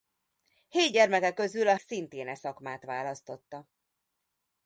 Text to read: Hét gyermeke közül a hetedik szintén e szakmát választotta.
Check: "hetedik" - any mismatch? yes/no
yes